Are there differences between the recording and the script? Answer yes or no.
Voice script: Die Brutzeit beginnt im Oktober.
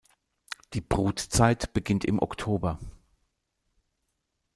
no